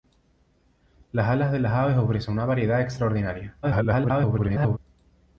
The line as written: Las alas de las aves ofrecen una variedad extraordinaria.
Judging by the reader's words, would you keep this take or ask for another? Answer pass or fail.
fail